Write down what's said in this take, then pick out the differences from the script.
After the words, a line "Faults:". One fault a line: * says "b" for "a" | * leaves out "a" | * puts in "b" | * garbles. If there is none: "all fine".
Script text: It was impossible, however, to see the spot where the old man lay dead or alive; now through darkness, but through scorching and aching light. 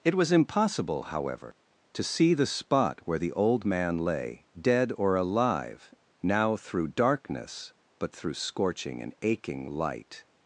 It was impossible, however, to see the spot where the old man lay dead or alive; now through darkness, but through scorching and aching light.
Faults:
all fine